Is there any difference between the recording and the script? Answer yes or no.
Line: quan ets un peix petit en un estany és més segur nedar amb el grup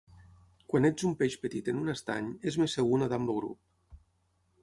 no